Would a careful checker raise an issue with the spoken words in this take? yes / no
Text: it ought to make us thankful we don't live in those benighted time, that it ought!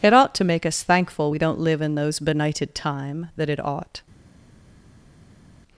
no